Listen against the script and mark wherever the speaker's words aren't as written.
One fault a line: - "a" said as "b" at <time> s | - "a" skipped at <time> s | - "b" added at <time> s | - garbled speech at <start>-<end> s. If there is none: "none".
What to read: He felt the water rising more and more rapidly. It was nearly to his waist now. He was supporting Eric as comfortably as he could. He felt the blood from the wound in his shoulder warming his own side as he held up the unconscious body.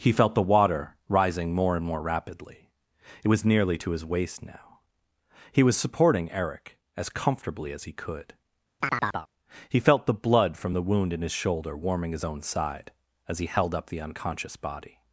none